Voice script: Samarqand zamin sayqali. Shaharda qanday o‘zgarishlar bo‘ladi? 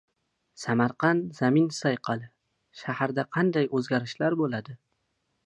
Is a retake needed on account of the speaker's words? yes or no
no